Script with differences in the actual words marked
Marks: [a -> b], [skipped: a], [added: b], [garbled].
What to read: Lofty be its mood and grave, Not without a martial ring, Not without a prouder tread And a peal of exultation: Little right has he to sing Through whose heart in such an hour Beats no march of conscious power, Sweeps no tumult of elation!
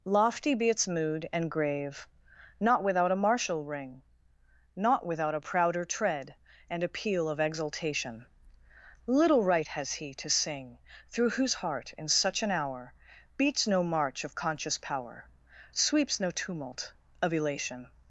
Lofty be its mood and grave, Not without a martial ring, Not without a prouder tread And a peal of exultation: Little right has he to sing Through whose heart in such an hour Beats no march of conscious power, Sweeps no tumult of elation!